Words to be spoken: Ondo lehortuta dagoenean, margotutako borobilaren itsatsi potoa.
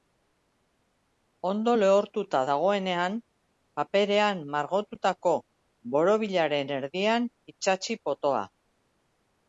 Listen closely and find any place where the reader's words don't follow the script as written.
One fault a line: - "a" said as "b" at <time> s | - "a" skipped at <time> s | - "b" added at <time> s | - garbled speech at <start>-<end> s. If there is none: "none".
- "paperean" added at 3.8 s
- "erdian" added at 6.8 s